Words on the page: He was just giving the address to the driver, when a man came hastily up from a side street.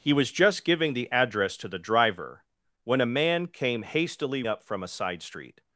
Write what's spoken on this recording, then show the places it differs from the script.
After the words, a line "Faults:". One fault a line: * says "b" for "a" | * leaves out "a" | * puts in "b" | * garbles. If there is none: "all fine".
He was just giving the address to the driver, when a man came hastily up from a side street.
Faults:
all fine